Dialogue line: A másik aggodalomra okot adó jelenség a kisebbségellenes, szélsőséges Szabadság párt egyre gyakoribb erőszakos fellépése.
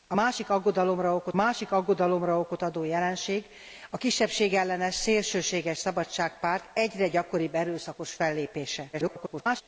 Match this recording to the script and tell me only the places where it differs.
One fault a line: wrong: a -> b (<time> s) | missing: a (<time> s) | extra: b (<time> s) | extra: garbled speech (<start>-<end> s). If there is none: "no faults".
extra: másik aggodalomra okot (1.3 s)
extra: garbled speech (8.9-9.6 s)